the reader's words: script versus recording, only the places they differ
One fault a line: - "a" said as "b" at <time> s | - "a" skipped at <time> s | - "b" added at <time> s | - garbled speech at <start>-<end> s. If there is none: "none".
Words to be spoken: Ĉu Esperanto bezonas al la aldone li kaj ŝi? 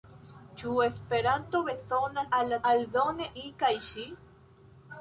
none